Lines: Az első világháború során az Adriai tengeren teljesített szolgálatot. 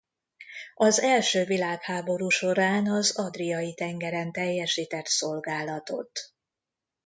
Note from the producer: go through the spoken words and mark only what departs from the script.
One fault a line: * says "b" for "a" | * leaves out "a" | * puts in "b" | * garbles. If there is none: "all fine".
all fine